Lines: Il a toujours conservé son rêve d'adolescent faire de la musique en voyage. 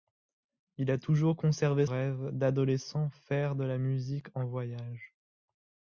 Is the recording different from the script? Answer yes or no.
yes